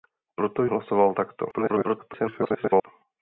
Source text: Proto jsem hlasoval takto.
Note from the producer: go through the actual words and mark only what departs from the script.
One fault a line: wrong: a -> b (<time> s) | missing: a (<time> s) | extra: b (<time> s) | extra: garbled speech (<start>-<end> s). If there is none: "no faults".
missing: jsem (0.7 s)
extra: garbled speech (1.5-2.9 s)